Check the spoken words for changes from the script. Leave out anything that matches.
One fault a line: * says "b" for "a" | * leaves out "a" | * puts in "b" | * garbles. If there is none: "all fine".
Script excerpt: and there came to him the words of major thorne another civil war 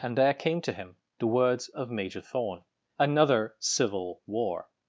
all fine